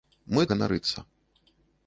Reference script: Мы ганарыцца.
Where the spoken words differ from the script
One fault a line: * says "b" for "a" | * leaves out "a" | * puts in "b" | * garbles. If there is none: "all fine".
all fine